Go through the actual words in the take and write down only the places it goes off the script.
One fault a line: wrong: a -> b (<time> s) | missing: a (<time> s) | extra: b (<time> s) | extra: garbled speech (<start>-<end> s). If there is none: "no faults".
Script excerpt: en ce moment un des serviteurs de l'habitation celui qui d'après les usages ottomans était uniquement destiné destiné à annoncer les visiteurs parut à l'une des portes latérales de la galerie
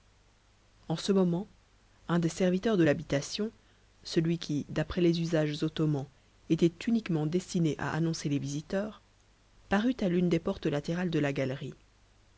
missing: destiné (7.7 s)